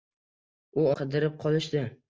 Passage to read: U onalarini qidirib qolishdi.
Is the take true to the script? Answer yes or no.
no